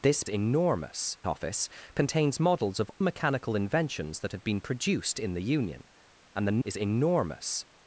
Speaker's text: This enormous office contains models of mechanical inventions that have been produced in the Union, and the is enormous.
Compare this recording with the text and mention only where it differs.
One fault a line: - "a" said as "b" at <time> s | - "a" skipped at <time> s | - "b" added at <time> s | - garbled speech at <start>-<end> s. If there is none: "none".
none